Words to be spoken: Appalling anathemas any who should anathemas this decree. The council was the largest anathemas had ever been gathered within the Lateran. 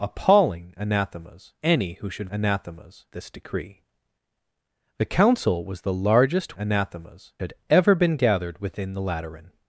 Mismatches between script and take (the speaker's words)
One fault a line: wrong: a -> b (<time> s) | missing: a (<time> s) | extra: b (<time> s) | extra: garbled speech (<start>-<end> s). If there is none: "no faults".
no faults